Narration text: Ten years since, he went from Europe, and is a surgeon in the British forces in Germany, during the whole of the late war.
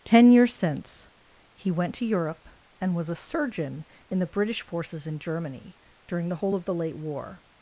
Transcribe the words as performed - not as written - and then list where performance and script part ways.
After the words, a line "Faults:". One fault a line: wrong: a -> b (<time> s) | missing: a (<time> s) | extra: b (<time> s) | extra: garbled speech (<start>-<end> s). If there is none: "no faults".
Ten years since, he went to Europe, and was a surgeon in the British forces in Germany, during the whole of the late war.
Faults:
wrong: from -> to (1.9 s)
wrong: is -> was (3.0 s)